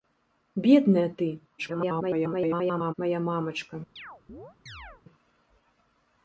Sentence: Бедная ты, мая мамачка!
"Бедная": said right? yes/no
yes